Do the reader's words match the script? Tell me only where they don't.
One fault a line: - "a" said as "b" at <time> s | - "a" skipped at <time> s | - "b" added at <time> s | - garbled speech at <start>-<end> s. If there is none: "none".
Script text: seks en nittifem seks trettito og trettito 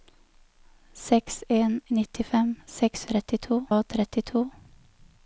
none